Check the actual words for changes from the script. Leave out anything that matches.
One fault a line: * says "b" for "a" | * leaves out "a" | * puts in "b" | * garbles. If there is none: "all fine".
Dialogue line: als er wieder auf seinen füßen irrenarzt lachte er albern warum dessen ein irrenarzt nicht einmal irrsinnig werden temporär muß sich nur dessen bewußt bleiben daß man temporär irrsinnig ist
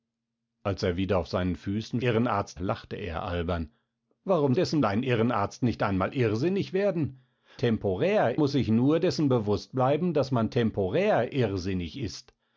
all fine